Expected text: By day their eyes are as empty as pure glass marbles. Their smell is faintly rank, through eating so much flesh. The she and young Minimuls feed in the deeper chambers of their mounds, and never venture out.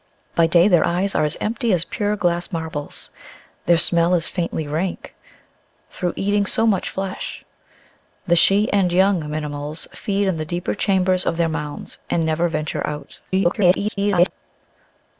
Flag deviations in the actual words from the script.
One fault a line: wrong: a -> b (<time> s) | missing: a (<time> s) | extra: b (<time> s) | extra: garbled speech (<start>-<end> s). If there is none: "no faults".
extra: garbled speech (13.3-14.3 s)